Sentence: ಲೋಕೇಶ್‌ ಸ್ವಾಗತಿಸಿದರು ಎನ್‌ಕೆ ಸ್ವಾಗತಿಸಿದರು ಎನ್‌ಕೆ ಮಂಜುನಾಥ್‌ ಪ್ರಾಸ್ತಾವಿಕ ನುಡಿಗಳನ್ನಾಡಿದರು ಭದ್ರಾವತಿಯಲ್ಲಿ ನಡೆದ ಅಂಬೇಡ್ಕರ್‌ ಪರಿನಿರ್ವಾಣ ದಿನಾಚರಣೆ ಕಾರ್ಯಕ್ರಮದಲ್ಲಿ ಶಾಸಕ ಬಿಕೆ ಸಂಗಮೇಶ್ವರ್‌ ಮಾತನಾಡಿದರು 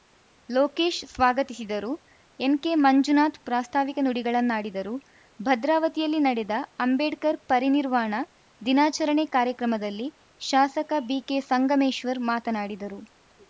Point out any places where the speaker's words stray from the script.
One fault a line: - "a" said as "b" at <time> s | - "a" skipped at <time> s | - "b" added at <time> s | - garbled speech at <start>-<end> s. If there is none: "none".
- "ಸ್ವಾಗತಿಸಿದರು ಎನ್‌ಕೆ" skipped at 2.7 s